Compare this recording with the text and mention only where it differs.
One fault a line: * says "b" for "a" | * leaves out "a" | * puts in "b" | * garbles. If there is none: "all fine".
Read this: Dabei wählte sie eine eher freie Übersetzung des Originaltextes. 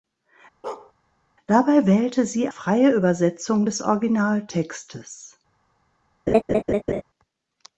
* leaves out "eine eher"